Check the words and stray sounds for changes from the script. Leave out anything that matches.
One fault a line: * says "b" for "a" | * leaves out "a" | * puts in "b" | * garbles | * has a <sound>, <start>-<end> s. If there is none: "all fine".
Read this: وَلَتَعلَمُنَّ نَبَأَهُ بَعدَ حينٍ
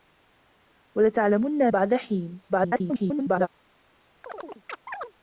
* leaves out "نَبَأَهُ"
* garbles
* has a chirp, 4.2-5.1 s